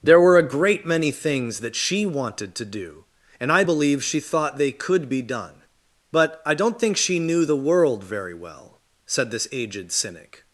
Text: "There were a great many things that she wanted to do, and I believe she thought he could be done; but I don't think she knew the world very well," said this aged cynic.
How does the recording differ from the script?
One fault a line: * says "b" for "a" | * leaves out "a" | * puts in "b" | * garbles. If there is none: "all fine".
* says "they" for "he"